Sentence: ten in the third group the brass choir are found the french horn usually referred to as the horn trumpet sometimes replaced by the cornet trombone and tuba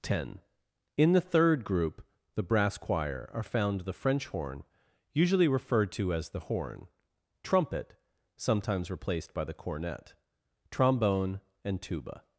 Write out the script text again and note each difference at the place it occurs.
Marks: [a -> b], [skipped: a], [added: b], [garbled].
ten in the third group the brass choir are found the french horn usually referred to as the horn trumpet sometimes replaced by the cornet trombone and tuba